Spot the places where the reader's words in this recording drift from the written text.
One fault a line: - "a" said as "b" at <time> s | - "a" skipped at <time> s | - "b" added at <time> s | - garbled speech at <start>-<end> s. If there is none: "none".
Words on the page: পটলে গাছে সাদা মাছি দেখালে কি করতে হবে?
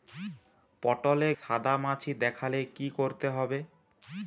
- "গাছে" skipped at 1.3 s